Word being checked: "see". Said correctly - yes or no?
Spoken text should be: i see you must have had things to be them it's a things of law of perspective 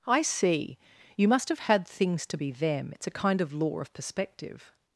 yes